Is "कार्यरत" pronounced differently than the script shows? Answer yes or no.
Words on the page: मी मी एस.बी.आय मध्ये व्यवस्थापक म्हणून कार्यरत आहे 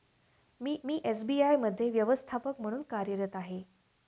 no